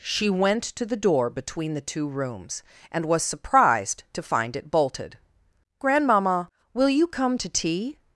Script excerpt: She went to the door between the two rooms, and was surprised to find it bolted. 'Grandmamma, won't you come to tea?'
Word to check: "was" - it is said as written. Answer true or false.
true